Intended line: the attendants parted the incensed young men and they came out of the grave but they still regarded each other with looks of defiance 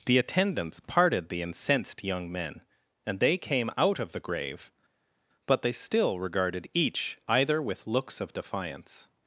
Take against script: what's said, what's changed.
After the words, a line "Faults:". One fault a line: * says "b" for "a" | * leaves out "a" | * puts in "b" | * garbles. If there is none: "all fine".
the attendants parted the incensed young men and they came out of the grave but they still regarded each either with looks of defiance
Faults:
* says "either" for "other"